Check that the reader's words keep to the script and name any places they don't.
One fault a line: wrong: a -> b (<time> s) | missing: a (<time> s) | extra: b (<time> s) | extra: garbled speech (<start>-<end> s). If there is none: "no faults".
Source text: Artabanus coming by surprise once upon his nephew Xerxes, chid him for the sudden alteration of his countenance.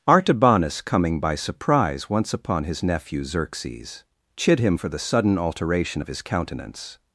no faults